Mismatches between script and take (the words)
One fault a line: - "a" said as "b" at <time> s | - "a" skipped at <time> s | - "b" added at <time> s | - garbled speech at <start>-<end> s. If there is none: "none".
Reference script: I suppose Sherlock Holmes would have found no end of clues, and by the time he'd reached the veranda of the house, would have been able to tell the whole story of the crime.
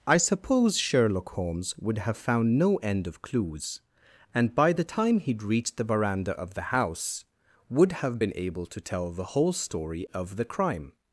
none